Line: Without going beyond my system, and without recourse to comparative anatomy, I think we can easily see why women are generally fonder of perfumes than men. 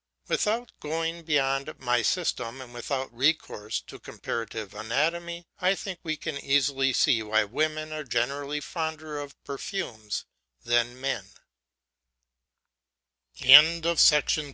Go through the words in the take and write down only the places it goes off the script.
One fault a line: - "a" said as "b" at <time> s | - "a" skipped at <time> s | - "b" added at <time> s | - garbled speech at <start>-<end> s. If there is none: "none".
none